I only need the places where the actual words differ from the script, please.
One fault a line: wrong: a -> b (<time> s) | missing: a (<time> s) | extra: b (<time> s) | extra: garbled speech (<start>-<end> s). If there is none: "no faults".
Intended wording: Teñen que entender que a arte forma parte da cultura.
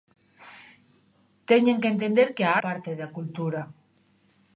missing: arte forma (2.5 s)